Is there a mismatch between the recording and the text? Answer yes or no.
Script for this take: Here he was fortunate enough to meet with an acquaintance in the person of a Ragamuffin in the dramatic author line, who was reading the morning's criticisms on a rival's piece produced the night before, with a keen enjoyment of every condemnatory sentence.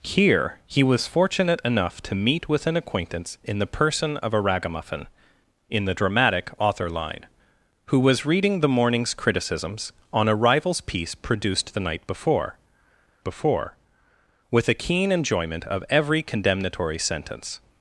yes